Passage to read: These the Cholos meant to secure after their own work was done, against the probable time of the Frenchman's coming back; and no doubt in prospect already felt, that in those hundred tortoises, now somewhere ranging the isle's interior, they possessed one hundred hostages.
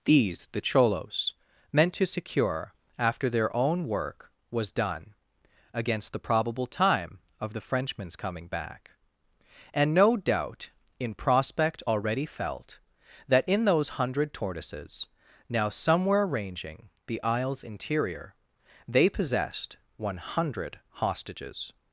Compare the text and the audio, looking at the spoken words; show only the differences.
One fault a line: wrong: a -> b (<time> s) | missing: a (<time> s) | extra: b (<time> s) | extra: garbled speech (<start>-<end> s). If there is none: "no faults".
no faults